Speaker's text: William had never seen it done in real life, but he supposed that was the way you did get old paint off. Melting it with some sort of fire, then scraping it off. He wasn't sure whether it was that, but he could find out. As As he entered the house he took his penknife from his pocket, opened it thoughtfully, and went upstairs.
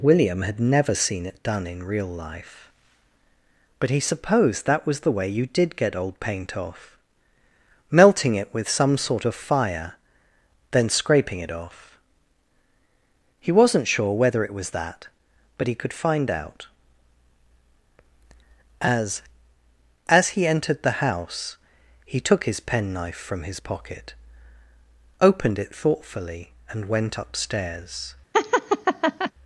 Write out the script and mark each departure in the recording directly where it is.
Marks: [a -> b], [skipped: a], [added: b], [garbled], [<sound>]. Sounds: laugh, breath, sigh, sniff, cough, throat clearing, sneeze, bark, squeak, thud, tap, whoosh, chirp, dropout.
William had never seen it done in real life, but he supposed that was the way you did get old paint off. Melting it with some sort of fire, then scraping it off. He wasn't sure whether it was that, but he could find out. As As he entered the house he took his penknife from his pocket, opened it thoughtfully, and went upstairs. [laugh]